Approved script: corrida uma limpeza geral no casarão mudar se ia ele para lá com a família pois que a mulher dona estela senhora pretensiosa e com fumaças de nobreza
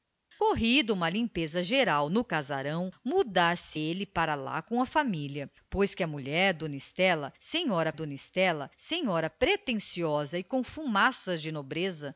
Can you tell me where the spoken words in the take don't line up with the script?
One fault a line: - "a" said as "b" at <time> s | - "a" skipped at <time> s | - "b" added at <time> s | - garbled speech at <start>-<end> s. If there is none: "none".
- "ia" skipped at 3.8 s
- "dona estela senhora" added at 7.9 s